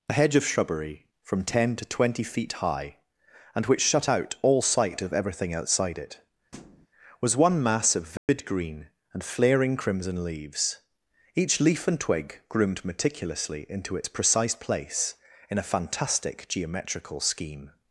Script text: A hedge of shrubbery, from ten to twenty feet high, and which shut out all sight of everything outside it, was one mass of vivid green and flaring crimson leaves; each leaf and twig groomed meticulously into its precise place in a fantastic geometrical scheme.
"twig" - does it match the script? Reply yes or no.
yes